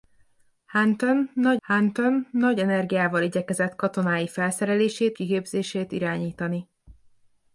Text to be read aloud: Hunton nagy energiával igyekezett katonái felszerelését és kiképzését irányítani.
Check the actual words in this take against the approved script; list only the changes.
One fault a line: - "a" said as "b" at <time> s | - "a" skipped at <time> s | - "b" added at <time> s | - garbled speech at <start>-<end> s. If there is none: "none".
- "hunton nagy" added at 1.6 s
- "és" skipped at 5.2 s